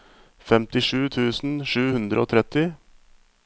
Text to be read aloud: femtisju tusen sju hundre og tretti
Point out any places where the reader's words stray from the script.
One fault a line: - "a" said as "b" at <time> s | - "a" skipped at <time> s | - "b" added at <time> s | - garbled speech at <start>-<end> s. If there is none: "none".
none